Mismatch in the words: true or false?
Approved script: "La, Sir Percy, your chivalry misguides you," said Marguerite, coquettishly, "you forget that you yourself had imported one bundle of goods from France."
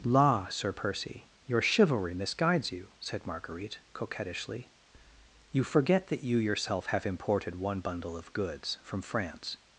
true